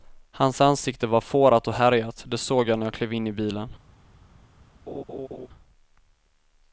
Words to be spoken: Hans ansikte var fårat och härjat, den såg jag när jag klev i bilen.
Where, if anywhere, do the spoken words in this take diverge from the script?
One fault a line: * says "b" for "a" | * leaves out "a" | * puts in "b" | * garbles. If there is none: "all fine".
* says "det" for "den"
* puts in "in"